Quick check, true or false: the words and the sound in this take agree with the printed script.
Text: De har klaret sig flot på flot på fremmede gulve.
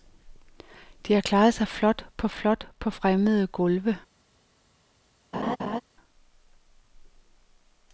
false